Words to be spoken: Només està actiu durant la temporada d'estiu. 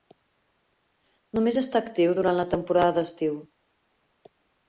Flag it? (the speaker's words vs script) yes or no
no